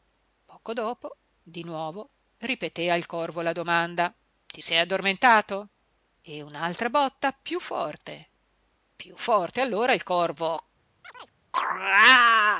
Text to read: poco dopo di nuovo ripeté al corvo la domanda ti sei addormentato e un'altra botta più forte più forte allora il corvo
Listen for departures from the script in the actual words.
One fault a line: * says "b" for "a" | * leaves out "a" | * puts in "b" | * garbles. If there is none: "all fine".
all fine